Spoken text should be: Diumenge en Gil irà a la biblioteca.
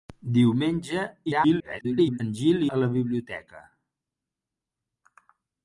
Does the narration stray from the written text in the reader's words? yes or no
yes